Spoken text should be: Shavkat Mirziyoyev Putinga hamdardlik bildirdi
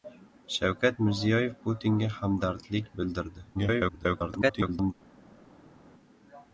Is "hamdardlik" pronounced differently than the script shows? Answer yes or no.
no